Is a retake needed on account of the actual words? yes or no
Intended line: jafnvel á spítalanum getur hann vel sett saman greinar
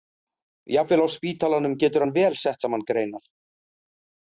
no